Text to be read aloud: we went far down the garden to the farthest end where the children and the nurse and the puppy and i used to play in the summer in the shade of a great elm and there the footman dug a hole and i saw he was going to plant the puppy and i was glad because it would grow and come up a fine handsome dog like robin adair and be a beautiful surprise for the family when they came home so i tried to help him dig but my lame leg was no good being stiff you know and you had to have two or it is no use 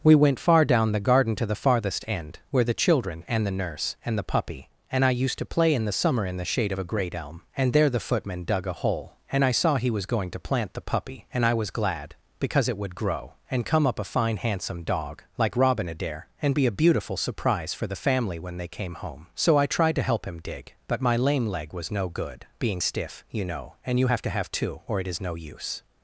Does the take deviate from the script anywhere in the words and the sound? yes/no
yes